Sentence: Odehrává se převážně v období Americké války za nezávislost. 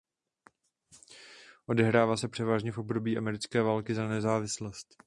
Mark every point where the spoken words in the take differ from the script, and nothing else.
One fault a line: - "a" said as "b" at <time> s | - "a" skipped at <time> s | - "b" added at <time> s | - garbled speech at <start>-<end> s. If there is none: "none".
none